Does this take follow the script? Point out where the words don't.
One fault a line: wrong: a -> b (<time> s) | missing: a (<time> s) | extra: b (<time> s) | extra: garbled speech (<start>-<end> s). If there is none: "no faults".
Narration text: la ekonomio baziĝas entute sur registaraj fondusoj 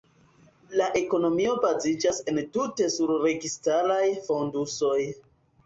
no faults